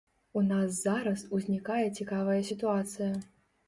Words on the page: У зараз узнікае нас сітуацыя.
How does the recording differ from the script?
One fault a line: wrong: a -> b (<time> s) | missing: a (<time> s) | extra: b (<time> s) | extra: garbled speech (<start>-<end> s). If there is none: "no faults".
extra: нас (0.5 s)
wrong: нас -> цікавая (2.0 s)